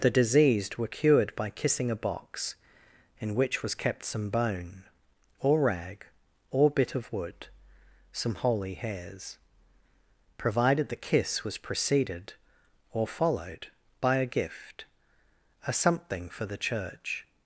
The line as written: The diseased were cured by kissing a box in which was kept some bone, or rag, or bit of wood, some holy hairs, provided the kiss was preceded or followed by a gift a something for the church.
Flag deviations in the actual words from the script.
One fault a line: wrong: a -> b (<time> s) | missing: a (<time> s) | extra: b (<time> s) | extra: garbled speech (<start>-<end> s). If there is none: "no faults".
no faults